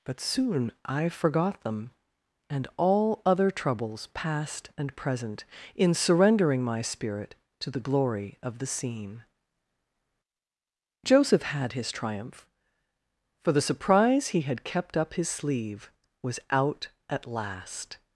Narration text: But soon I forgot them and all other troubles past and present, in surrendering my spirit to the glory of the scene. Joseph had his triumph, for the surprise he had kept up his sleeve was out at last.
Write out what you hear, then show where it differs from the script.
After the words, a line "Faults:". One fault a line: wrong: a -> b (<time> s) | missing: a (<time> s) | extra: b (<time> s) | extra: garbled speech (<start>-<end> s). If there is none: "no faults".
But soon I forgot them and all other troubles past and present, in surrendering my spirit to the glory of the scene. Joseph had his triumph, for the surprise he had kept up his sleeve was out at last.
Faults:
no faults